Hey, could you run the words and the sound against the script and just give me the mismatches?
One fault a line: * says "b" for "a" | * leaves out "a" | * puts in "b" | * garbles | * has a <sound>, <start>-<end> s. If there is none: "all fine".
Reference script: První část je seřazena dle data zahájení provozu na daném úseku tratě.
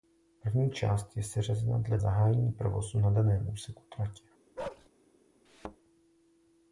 * leaves out "data"
* has a bark, 4.6-4.9 s
* has a thud, 5.5-5.8 s